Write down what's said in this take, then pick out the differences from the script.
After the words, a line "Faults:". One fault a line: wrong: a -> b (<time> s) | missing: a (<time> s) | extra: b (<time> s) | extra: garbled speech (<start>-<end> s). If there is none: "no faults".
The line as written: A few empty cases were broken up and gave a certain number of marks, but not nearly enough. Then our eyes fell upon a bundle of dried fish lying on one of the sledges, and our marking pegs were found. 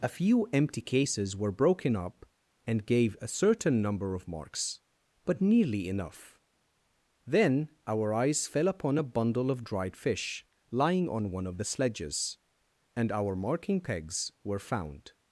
A few empty cases were broken up and gave a certain number of marks, but nearly enough. Then our eyes fell upon a bundle of dried fish lying on one of the sledges, and our marking pegs were found.
Faults:
missing: not (5.4 s)